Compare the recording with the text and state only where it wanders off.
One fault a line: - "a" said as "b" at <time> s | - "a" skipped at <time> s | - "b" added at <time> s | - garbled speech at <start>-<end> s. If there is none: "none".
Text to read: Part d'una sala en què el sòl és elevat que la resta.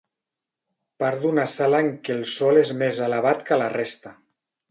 - "més" added at 2.8 s